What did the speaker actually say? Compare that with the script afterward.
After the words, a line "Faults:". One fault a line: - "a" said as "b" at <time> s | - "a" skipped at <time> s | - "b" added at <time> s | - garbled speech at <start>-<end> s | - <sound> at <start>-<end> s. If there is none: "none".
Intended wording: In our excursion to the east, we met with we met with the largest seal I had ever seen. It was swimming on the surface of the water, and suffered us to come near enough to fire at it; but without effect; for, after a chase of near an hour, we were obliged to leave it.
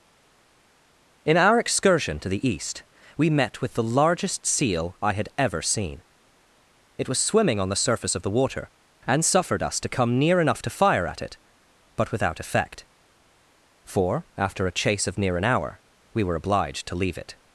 In our excursion to the east, we met with the largest seal I had ever seen. It was swimming on the surface of the water, and suffered us to come near enough to fire at it; but without effect; for, after a chase of near an hour, we were obliged to leave it.
Faults:
- "we met with" skipped at 3.7 s